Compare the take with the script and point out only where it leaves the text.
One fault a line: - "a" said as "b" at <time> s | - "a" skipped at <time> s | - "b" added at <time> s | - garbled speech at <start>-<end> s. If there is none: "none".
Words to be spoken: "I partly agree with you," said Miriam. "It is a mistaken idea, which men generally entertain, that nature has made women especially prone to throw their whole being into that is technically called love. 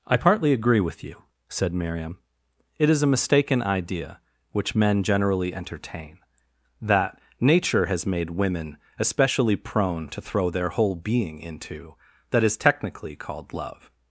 none